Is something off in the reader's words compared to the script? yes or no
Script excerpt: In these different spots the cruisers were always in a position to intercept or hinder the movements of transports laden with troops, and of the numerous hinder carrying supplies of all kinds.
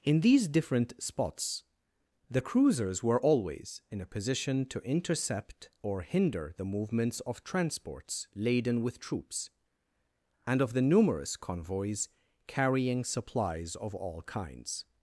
yes